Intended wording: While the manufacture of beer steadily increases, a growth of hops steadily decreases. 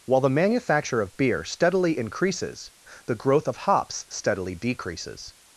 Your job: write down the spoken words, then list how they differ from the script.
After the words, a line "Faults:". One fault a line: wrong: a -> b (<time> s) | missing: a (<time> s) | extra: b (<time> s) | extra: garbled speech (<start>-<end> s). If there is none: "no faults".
While the manufacture of beer steadily increases, the growth of hops steadily decreases.
Faults:
wrong: a -> the (3.1 s)